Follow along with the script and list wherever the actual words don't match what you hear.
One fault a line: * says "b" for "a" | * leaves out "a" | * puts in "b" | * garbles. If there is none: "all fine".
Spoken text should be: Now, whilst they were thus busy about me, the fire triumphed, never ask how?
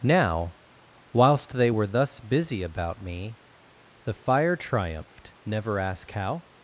all fine